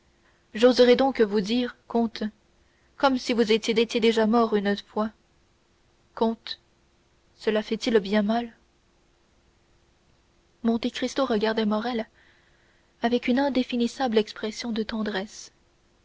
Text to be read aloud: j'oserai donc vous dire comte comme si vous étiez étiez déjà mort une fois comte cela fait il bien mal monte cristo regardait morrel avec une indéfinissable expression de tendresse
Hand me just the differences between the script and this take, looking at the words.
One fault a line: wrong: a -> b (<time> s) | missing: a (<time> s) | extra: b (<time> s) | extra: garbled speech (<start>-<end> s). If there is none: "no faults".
no faults